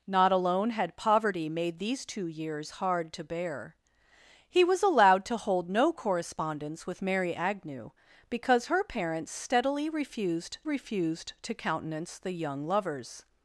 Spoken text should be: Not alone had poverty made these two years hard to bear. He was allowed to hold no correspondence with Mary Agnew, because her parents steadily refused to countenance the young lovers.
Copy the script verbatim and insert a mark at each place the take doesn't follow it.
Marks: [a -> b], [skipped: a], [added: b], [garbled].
Not alone had poverty made these two years hard to bear. He was allowed to hold no correspondence with Mary Agnew, because her parents steadily refused [added: refused] to countenance the young lovers.